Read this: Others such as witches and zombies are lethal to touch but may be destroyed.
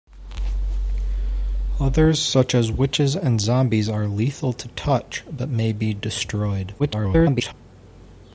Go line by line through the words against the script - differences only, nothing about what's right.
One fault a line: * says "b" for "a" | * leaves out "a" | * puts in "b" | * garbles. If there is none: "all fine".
* garbles